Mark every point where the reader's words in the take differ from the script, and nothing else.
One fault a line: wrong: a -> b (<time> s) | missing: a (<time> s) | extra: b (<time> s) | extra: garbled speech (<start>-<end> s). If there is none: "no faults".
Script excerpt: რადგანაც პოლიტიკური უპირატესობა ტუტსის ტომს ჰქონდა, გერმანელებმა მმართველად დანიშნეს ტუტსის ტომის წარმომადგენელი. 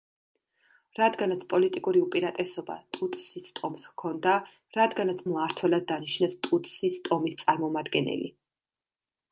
wrong: გერმანელებმა -> რადგანაც (4.8 s)